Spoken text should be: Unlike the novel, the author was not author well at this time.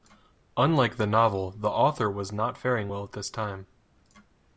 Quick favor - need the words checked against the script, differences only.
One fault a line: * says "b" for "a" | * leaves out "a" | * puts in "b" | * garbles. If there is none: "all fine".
* says "faring" for "author"